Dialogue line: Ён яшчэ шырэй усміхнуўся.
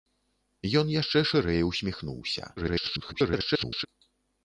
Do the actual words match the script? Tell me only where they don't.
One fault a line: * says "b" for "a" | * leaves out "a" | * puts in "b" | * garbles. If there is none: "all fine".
* garbles